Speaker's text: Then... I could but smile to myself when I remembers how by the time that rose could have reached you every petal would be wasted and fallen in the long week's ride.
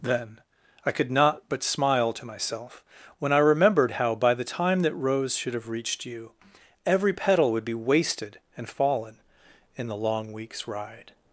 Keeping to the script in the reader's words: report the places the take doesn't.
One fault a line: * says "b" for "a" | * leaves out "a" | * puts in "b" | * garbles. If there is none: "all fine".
* puts in "not"
* says "remembered" for "remembers"
* says "should" for "could"